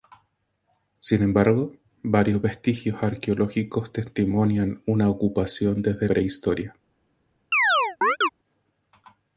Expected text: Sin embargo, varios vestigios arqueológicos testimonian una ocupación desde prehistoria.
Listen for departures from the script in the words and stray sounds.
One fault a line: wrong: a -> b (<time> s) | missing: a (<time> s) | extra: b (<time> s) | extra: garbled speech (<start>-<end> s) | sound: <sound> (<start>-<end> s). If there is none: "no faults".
sound: chirp (7.5-8.3 s)